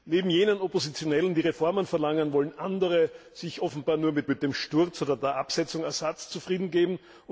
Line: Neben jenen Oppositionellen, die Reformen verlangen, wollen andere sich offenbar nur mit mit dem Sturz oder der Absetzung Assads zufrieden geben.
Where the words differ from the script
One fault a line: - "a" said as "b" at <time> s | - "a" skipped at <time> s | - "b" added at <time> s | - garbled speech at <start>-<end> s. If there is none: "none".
none